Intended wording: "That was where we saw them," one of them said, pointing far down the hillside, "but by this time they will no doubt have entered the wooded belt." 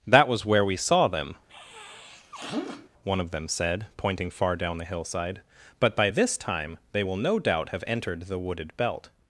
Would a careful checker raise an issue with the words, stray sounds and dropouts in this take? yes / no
yes